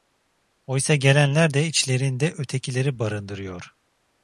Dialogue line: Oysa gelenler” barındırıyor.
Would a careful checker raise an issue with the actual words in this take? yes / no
yes